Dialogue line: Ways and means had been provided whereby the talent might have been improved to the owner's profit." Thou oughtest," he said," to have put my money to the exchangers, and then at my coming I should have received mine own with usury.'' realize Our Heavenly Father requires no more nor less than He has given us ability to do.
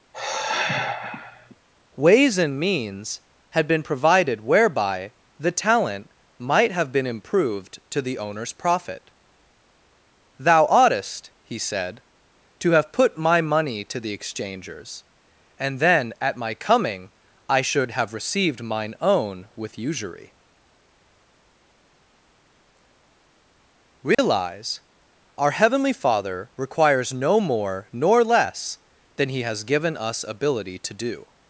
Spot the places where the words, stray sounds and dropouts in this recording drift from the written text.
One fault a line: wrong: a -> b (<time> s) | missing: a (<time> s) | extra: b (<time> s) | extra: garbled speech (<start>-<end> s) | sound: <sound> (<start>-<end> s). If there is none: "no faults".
sound: sigh (0.1-1.5 s)
sound: dropout (24.1-24.2 s)